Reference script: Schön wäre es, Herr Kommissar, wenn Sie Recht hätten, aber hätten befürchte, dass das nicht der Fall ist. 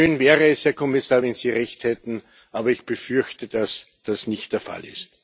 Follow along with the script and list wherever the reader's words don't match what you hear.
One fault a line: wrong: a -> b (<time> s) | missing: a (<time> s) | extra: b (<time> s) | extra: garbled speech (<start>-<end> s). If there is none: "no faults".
wrong: hätten -> ich (2.7 s)